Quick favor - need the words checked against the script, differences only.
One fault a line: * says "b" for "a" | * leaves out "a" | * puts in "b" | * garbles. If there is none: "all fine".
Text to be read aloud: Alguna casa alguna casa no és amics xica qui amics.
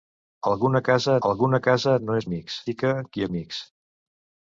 all fine